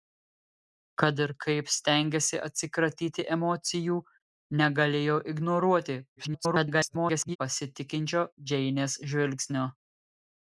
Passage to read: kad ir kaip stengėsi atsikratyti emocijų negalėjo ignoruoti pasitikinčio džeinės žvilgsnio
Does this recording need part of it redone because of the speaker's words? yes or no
yes